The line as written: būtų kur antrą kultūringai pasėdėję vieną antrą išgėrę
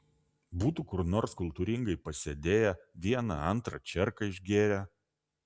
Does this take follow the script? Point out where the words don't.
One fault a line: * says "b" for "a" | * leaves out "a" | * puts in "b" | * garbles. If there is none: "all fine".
* says "nors" for "antrą"
* puts in "čierką"